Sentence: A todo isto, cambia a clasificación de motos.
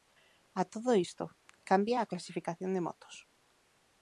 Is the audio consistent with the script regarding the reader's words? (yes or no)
yes